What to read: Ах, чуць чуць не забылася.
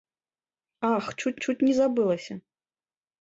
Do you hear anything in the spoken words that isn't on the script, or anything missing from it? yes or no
no